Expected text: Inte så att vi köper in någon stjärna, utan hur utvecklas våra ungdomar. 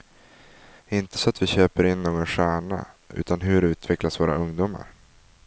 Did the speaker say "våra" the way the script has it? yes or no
yes